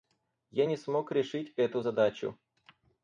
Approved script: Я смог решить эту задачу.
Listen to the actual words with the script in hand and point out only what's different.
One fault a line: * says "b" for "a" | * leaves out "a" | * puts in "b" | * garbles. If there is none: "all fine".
* puts in "не"